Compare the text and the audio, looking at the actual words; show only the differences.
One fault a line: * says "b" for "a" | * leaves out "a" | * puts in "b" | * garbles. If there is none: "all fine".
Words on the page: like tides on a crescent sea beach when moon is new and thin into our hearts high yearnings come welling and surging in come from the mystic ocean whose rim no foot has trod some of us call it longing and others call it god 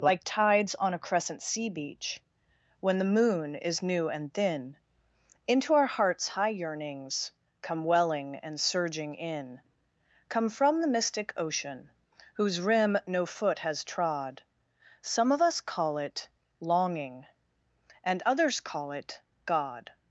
* puts in "the"